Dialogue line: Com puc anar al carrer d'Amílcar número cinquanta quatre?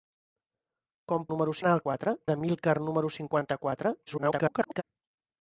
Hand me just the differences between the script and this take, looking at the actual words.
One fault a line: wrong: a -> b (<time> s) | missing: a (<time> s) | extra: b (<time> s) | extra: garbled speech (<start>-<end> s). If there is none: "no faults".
wrong: puc -> número (1.3 s)
wrong: carrer -> quatre (1.9 s)
extra: garbled speech (4.1-4.8 s)